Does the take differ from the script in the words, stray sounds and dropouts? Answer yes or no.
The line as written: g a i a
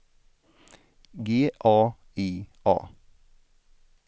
no